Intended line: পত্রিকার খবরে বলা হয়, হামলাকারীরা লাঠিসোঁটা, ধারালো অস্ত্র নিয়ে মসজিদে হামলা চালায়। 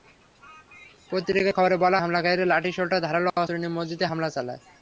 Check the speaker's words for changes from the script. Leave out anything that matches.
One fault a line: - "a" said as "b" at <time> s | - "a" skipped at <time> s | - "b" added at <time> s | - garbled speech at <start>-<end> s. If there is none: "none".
- "হয়" skipped at 2.0 s